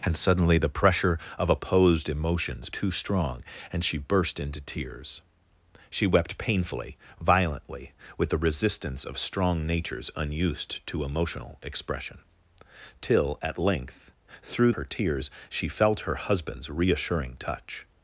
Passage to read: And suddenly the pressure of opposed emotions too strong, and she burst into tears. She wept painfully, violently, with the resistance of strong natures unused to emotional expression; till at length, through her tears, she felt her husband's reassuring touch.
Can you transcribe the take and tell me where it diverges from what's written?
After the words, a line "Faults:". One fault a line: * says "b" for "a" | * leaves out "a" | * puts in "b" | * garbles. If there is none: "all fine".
And suddenly the pressure of opposed emotions too strong, and she burst into tears. She wept painfully, violently, with the resistance of strong natures unused to emotional expression; till at length, through her tears, she felt her husband's reassuring touch.
Faults:
all fine